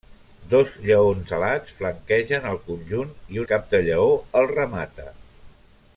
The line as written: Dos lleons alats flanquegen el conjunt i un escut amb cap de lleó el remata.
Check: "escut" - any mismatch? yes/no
yes